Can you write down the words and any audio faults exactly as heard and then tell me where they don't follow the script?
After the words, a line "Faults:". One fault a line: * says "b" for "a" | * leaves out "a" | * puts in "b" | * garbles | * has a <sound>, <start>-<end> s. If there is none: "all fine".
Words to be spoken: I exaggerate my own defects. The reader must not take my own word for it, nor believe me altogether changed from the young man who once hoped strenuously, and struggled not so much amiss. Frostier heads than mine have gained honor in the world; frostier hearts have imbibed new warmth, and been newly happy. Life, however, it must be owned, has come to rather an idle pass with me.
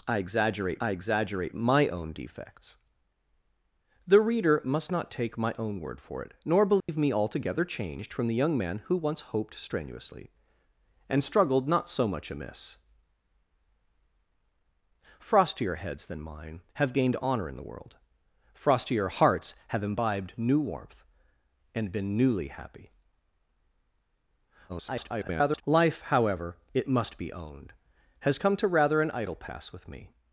I exaggerate I exaggerate my own defects. The reader must not take my own word for it, nor believe me altogether changed from the young man who once hoped strenuously, and struggled not so much amiss. Frostier heads than mine have gained honor in the world; frostier hearts have imbibed new warmth, and been newly happy. [garbled] Life, however, it must be owned, has come to rather an idle pass with me.
Faults:
* puts in "I exaggerate"
* has a dropout, 6.8-6.9 s
* garbles